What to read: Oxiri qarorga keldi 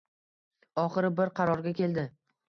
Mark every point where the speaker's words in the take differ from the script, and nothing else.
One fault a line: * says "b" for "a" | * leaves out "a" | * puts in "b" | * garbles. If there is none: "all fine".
* puts in "bir"